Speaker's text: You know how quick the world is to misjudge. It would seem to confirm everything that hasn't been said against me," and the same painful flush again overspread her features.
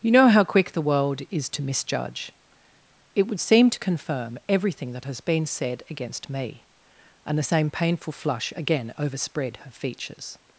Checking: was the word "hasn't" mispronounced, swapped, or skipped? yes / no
yes